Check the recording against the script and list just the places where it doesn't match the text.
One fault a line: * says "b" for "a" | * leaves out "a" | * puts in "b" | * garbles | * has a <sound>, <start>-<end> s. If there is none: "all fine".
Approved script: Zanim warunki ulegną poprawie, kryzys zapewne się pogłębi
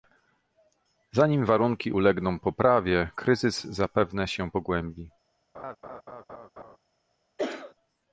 * has a laugh, 5.5-6.8 s
* has a cough, 7.4-7.7 s